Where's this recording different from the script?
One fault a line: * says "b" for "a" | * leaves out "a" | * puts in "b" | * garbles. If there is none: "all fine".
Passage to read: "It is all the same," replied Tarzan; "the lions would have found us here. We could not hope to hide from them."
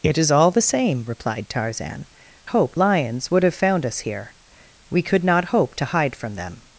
* says "hope" for "the"